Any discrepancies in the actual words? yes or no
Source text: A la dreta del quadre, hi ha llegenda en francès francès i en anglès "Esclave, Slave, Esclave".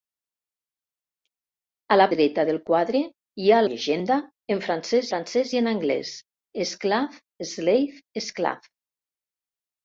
no